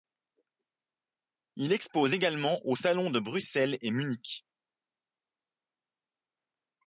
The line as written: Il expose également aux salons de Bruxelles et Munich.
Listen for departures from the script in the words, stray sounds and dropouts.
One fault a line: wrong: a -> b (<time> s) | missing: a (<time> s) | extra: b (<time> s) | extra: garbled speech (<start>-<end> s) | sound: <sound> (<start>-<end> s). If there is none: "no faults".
no faults